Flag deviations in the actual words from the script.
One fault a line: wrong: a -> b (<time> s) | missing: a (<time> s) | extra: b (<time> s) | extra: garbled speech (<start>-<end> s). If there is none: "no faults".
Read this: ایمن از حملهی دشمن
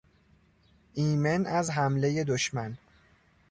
no faults